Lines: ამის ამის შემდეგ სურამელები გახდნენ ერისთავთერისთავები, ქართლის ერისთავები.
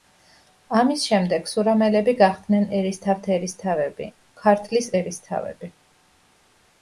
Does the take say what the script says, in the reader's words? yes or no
no